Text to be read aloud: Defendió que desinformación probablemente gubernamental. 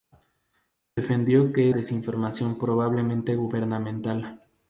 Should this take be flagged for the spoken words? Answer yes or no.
no